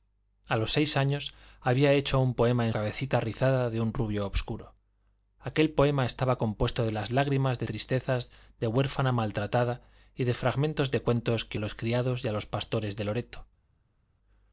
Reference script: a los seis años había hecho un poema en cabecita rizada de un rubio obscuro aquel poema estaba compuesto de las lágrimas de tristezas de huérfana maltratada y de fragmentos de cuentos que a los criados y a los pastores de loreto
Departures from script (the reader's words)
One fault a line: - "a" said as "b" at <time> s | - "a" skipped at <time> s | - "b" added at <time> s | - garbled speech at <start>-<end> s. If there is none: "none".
none